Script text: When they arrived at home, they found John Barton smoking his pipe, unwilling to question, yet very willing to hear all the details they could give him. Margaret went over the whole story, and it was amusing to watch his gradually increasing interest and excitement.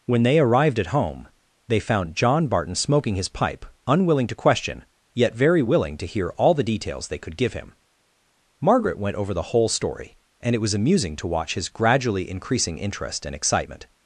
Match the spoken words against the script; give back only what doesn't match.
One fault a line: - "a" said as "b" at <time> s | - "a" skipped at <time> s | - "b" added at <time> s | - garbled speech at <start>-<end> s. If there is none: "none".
none